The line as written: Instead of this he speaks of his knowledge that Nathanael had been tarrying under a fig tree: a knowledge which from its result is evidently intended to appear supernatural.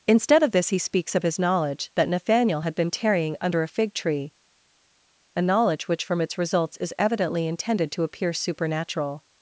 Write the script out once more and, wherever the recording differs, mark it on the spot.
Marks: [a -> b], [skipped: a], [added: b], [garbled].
Instead of this he speaks of his knowledge that Nathanael had been tarrying under a fig tree: a knowledge which from its [result -> results] is evidently intended to appear supernatural.